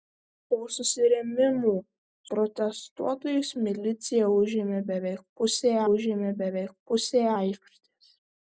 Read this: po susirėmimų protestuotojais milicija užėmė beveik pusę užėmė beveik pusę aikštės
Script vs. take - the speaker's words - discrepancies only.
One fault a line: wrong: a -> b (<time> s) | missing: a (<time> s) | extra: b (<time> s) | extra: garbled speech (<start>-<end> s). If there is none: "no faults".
no faults